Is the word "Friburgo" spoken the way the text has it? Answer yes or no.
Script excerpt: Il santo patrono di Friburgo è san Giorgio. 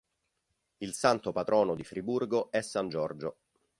yes